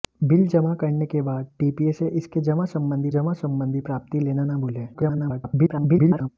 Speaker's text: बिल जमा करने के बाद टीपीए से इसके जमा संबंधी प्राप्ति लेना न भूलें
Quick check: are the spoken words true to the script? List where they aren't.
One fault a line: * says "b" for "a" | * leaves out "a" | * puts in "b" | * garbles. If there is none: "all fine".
* puts in "जमा संबंधी"
* garbles